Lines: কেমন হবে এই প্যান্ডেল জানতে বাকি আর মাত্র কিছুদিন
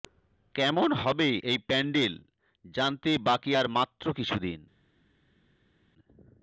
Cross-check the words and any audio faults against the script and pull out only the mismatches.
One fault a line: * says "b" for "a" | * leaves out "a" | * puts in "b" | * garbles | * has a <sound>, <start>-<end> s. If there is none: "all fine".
all fine